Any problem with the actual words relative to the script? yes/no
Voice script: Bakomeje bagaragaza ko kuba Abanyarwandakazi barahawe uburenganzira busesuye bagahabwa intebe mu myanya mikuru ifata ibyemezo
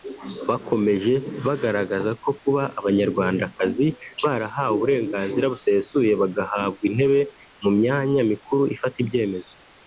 no